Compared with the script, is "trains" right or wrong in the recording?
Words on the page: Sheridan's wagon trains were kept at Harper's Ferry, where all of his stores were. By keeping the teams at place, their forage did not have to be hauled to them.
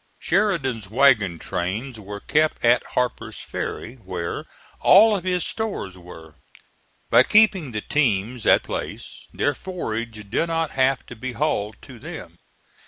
right